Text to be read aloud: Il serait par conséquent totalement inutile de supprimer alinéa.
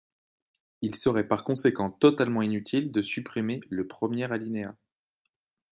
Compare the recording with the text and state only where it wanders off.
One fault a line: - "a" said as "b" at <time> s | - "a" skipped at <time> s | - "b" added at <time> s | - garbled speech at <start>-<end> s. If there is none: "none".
- "le premier" added at 3.7 s